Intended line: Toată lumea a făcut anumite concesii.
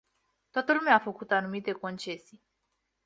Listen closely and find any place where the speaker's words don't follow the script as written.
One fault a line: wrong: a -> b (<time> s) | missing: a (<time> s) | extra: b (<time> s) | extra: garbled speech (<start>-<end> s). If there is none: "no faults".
no faults